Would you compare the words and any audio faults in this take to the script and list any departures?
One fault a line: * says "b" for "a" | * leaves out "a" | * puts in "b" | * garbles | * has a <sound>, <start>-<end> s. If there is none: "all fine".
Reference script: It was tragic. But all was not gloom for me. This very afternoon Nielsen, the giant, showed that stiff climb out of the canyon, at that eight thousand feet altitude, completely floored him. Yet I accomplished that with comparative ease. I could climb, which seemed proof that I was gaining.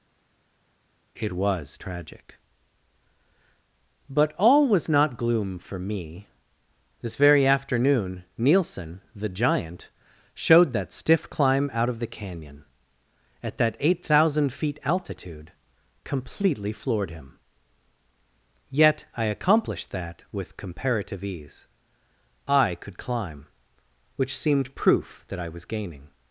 all fine